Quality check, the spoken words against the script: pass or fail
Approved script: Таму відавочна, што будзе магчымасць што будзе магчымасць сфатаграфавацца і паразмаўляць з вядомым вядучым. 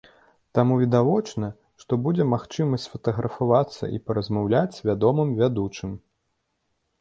fail